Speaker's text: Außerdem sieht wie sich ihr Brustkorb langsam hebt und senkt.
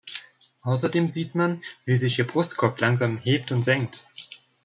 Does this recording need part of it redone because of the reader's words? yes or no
yes